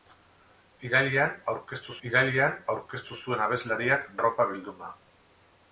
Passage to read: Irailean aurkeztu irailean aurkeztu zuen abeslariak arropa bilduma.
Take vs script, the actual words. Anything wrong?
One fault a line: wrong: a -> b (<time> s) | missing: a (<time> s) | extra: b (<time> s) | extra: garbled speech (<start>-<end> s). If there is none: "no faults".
no faults